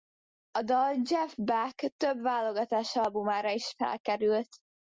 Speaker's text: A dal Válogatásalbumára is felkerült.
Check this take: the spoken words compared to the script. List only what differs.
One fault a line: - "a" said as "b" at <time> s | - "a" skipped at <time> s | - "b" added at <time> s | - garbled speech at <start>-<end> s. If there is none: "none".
- "Jeff Beck több" added at 1.0 s